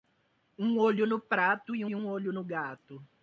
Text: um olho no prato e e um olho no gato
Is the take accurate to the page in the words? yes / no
yes